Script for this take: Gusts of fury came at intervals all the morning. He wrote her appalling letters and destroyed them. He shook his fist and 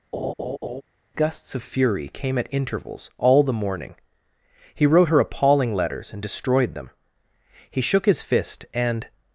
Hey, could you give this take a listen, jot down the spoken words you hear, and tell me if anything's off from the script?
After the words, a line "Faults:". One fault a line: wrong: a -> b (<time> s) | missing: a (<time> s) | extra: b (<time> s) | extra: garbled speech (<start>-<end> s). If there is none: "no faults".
Gusts of fury came at intervals all the morning. He wrote her appalling letters and destroyed them. He shook his fist and
Faults:
no faults